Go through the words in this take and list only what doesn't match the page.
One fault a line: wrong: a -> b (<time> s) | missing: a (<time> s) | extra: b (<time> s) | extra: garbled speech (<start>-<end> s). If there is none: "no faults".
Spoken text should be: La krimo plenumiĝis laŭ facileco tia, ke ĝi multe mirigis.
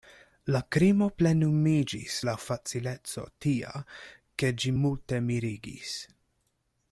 no faults